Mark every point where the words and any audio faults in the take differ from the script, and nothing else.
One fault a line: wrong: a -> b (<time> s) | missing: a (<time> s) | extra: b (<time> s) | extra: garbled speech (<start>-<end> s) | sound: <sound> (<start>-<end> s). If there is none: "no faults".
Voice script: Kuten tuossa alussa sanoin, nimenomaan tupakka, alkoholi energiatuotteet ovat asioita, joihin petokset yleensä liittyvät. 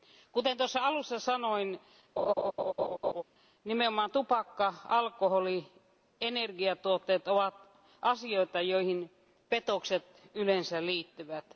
sound: laugh (2.2-3.2 s)
extra: ja (5.6 s)